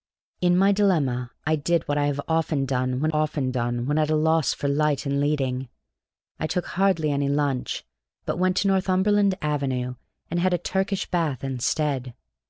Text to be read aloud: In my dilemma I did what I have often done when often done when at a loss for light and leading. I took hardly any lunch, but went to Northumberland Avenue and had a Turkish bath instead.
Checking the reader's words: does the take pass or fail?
pass